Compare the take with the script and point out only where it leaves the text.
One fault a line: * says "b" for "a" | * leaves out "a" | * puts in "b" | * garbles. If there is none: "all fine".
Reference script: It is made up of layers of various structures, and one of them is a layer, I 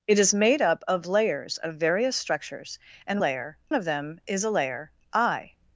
* says "layer" for "one"